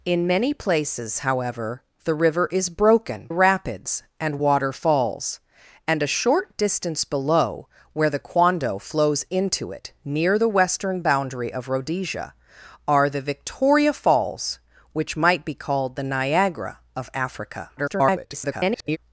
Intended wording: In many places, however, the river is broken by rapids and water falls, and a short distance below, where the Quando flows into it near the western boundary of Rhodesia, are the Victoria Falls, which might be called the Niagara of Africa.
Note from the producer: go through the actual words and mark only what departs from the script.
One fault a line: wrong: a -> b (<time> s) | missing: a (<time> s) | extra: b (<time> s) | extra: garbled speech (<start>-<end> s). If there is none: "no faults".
missing: by (3.3 s)
extra: garbled speech (17.8-19.0 s)